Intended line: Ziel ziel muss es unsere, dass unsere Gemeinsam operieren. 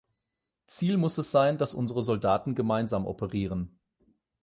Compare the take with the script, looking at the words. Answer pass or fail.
fail